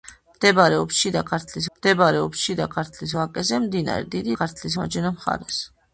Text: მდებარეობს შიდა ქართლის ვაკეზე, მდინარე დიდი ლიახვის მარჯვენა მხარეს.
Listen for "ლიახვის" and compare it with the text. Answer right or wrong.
wrong